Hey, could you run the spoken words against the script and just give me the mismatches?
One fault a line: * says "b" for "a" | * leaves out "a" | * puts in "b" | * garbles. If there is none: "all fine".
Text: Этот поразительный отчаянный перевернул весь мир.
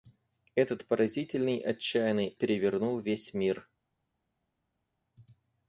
all fine